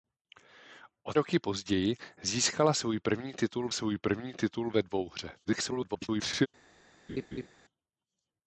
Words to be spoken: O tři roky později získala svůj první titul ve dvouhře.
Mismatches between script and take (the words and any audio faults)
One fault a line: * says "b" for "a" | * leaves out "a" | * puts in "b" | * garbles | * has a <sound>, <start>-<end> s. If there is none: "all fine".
* leaves out "tři"
* puts in "svůj první titul"
* garbles
* has a laugh, 7.1-7.5 s